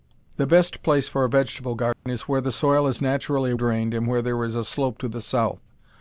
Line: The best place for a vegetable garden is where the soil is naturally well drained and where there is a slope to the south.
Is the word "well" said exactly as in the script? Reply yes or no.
no